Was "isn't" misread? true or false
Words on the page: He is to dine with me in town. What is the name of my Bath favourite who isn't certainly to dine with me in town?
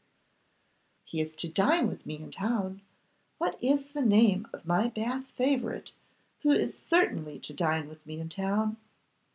true